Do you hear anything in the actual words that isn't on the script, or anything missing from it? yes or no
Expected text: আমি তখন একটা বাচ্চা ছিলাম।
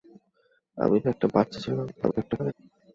yes